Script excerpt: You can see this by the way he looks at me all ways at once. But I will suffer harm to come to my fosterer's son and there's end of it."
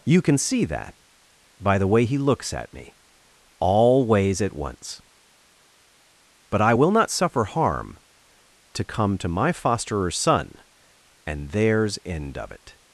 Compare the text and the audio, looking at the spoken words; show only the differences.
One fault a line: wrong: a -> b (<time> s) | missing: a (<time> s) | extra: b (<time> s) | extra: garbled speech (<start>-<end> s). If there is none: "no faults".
wrong: this -> that (0.7 s)
extra: not (6.9 s)